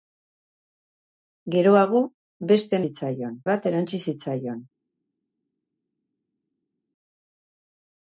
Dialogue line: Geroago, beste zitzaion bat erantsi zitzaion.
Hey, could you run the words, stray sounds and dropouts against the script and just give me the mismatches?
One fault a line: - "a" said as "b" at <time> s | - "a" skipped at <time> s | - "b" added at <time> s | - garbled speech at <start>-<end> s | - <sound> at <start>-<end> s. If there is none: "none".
none